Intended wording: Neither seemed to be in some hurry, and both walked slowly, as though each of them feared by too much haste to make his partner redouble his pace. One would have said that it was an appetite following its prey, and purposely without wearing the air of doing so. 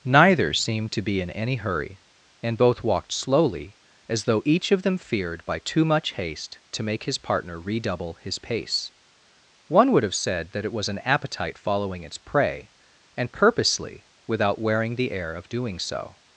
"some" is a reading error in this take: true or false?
true